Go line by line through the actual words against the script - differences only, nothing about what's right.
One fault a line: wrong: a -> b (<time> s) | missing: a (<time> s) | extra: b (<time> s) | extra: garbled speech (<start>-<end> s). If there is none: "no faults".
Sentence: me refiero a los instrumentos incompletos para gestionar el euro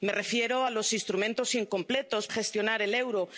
missing: para (2.3 s)